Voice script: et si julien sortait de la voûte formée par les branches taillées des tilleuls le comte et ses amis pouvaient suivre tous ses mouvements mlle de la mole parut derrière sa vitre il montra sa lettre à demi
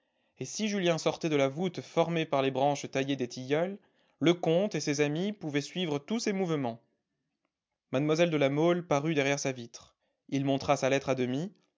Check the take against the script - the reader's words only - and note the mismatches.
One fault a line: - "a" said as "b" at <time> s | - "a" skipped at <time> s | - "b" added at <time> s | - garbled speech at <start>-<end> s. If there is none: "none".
none